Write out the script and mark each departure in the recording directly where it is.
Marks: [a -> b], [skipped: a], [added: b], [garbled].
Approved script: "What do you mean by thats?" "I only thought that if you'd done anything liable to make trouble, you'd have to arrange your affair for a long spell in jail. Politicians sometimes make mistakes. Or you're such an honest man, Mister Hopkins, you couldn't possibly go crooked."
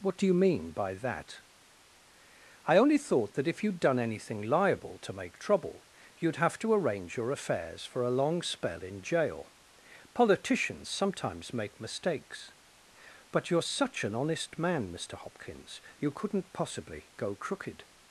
"What do you mean by [thats?" -> that] "I only thought that if you'd done anything liable to make trouble, you'd have to arrange your [affair -> affairs] for a long spell in jail. Politicians sometimes make mistakes. [Or -> But] you're such an honest man, Mister Hopkins, you couldn't possibly go crooked."